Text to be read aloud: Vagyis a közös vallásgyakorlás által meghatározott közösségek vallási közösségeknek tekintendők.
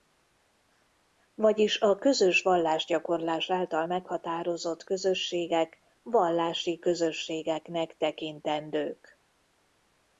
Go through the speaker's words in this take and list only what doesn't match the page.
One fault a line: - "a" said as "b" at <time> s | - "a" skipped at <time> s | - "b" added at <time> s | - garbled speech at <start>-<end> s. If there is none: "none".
none